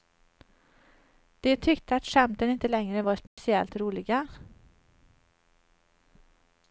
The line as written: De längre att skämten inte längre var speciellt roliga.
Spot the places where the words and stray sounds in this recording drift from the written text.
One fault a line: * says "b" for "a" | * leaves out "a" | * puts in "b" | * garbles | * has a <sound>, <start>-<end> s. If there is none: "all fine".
* says "tyckte" for "längre"
* has a dropout, 3.3-3.4 s